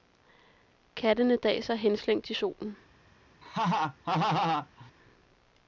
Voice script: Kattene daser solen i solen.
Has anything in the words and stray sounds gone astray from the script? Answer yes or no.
yes